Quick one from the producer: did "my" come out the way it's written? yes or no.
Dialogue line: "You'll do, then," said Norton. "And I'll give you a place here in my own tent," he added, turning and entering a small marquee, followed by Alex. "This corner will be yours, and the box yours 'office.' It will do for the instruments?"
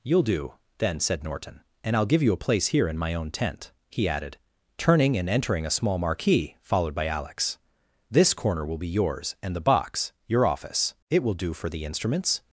yes